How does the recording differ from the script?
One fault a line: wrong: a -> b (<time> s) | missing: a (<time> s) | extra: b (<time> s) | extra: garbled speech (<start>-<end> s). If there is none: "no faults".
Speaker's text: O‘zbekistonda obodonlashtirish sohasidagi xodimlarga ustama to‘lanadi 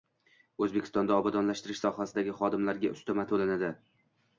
no faults